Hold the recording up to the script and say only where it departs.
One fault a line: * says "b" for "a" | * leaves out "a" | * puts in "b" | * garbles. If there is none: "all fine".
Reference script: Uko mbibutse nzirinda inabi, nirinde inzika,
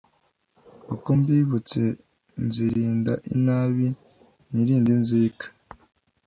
all fine